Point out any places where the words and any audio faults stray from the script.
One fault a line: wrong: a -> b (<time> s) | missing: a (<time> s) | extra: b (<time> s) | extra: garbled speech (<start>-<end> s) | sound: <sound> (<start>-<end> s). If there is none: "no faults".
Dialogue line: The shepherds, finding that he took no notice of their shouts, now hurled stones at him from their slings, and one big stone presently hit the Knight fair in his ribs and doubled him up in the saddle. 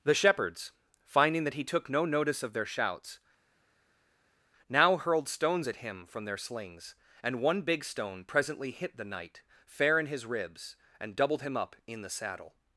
no faults